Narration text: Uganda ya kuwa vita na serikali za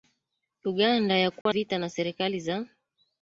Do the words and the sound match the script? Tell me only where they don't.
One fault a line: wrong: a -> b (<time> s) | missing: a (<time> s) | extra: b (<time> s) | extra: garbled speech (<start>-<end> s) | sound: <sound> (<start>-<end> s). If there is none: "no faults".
sound: dropout (1.4-1.5 s)